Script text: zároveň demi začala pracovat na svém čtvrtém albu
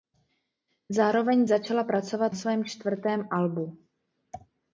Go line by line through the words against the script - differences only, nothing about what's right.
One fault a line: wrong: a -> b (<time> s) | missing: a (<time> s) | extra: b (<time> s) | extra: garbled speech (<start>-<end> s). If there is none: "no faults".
missing: demi (1.4 s)
missing: na (2.3 s)